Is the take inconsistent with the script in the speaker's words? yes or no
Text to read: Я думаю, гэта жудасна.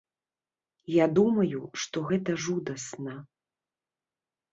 yes